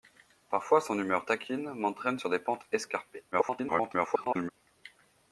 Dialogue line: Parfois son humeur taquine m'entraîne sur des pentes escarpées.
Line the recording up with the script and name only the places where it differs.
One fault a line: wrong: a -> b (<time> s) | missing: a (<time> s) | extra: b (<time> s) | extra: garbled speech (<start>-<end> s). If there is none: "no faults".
extra: garbled speech (3.3-4.5 s)